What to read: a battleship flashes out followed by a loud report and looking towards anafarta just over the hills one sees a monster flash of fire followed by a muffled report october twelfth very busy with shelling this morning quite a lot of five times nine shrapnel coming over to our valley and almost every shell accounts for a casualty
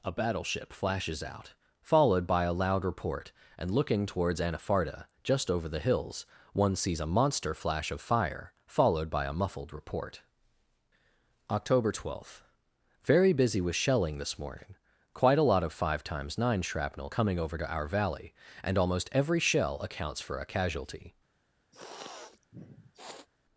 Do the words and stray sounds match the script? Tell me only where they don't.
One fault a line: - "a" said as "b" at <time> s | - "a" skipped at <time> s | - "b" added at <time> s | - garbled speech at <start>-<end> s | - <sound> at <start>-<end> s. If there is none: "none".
- sniff at 21.7-23.3 s